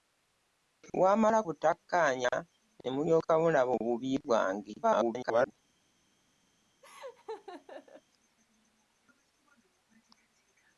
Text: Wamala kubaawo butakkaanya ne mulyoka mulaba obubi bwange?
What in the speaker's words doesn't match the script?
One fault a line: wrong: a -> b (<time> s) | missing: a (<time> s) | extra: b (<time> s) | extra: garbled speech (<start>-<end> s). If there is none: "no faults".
missing: kubaawo (1.4 s)
extra: garbled speech (4.8-5.5 s)